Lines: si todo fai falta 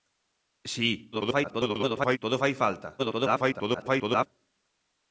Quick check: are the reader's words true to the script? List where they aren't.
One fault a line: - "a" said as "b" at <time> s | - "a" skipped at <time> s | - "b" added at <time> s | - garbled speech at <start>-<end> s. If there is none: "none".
- garbled speech at 1.1-2.2 s
- garbled speech at 3.0-4.3 s